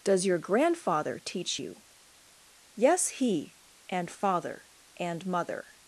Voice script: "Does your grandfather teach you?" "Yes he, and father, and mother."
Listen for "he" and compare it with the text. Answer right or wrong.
right